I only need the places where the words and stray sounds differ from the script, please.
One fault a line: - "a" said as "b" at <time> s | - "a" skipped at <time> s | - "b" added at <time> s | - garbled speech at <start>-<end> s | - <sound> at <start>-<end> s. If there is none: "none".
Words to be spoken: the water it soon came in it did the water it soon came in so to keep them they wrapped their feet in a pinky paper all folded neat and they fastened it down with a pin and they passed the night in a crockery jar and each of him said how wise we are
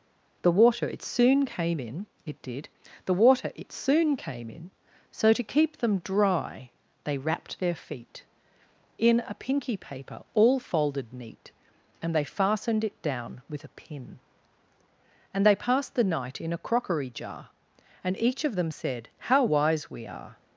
- "dry" added at 6.0 s
- "him" said as "them" at 18.5 s